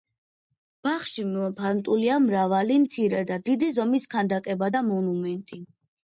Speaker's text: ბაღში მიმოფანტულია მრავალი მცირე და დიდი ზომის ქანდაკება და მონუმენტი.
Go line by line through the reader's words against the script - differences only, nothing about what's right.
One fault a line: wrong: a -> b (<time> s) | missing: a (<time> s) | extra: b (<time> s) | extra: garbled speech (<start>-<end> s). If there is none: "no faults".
no faults